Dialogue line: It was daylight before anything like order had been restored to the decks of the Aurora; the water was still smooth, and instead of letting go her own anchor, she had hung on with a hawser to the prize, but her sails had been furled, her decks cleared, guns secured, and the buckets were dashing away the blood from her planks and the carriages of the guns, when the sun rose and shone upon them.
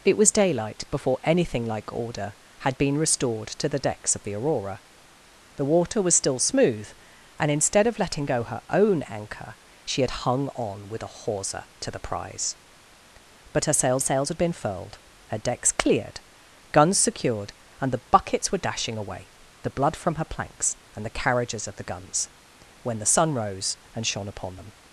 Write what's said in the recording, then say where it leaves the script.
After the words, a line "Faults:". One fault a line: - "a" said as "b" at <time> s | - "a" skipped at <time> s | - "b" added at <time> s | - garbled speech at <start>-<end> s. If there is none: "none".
It was daylight before anything like order had been restored to the decks of the Aurora; the water was still smooth, and instead of letting go her own anchor, she had hung on with a hawser to the prize, but her sails sails had been furled, her decks cleared, guns secured, and the buckets were dashing away the blood from her planks and the carriages of the guns, when the sun rose and shone upon them.
Faults:
- "sails" added at 14.0 s